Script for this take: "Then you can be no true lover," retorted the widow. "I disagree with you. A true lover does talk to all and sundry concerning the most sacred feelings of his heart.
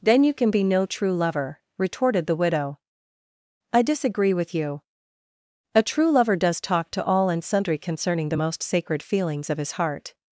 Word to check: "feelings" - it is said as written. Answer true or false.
true